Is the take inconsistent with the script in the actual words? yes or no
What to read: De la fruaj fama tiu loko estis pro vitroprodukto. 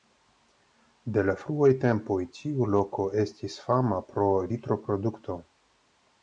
yes